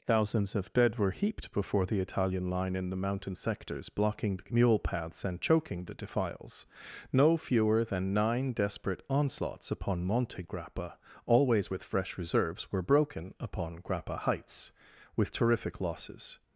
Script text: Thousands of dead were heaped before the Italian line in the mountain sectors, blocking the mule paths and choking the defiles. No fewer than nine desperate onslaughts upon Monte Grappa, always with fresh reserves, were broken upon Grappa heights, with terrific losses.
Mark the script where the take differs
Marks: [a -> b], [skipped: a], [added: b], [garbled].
Thousands of dead were heaped before the Italian line in the mountain sectors, blocking the mule paths and choking the defiles. No fewer than nine desperate onslaughts upon Monte Grappa, always with fresh reserves, were broken upon Grappa heights, with terrific losses.